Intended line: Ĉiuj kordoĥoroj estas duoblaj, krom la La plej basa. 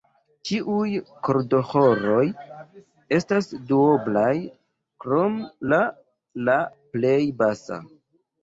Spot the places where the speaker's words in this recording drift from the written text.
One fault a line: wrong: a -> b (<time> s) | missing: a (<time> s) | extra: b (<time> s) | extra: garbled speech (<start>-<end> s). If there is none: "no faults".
no faults